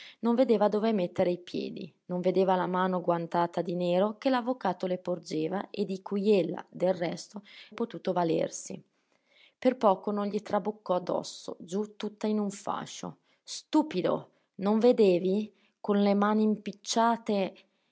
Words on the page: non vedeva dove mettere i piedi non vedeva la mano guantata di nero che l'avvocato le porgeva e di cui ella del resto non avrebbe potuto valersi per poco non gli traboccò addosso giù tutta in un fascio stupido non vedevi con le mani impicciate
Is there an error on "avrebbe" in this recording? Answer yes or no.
yes